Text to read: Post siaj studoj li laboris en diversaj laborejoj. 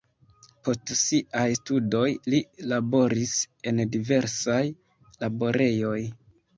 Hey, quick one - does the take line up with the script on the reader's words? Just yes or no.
yes